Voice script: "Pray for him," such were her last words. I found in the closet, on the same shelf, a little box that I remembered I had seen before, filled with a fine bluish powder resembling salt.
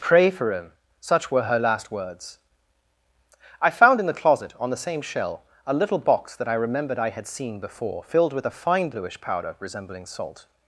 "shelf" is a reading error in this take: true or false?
true